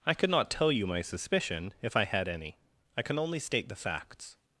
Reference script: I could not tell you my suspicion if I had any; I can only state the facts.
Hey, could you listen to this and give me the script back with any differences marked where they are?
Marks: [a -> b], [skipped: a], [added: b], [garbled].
I could not tell you my suspicion if I had any; I can only state the facts.